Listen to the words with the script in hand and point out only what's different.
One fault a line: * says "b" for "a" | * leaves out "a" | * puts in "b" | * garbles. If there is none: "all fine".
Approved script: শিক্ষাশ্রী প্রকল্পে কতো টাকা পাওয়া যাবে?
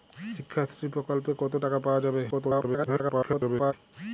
* garbles